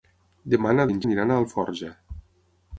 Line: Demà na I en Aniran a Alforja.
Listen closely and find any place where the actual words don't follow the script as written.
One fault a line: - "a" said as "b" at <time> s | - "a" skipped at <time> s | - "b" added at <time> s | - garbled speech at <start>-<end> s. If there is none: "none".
none